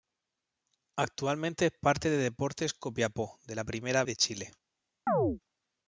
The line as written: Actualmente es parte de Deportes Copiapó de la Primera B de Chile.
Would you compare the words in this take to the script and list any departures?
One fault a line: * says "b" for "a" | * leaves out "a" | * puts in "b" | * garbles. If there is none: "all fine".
* leaves out "B"